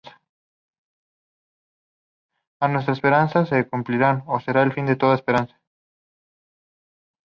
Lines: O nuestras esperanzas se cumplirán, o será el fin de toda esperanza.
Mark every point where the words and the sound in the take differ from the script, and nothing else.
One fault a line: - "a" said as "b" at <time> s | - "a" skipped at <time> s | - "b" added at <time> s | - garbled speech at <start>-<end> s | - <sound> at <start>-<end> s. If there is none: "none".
none